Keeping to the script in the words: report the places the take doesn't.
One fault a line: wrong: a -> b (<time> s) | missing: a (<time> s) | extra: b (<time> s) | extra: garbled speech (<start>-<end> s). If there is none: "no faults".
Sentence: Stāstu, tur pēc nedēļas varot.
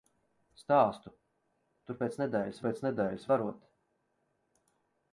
extra: pēc nedēļas (2.6 s)